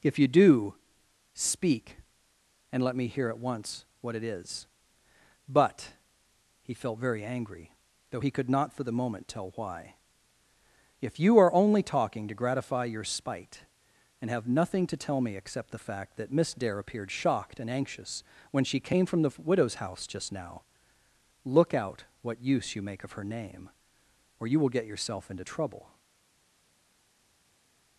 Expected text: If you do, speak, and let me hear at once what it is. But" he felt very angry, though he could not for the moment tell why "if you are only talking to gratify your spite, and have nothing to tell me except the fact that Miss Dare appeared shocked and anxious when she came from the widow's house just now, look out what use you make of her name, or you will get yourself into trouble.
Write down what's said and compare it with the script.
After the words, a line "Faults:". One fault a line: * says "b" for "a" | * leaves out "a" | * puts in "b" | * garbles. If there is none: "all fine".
If you do, speak, and let me hear at once what it is. But" he felt very angry, though he could not for the moment tell why "if you are only talking to gratify your spite, and have nothing to tell me except the fact that Miss Dare appeared shocked and anxious when she came from the widow's house just now, look out what use you make of her name, or you will get yourself into trouble.
Faults:
all fine